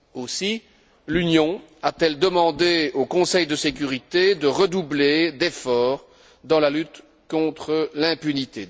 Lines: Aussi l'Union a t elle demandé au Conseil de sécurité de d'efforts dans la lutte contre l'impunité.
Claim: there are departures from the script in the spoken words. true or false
true